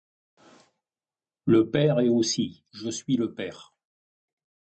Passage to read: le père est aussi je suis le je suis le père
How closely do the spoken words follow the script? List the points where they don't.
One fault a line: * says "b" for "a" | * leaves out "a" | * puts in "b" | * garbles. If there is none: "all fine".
* leaves out "je suis le"